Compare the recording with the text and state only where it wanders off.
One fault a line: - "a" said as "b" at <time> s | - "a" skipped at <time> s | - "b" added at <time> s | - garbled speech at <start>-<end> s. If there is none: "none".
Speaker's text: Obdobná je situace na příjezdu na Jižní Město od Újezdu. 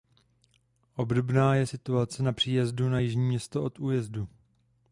none